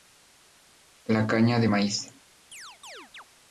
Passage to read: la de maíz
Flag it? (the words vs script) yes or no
yes